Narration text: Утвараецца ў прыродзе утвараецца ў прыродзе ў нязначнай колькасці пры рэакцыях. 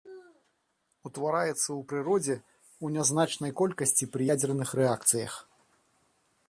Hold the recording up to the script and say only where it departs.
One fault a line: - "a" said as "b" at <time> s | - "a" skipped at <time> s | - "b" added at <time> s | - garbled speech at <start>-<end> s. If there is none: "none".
- "утвараецца" skipped at 2.4 s
- "прыродзе ў" skipped at 2.8 s
- "ядзерных" added at 4.3 s